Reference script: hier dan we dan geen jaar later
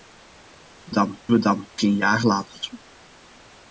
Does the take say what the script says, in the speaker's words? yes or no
yes